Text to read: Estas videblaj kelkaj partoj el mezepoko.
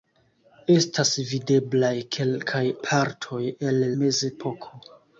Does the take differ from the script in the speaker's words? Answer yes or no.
no